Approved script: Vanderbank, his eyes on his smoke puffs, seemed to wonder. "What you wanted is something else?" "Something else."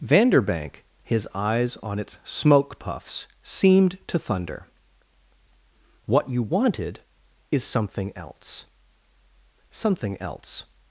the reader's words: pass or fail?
fail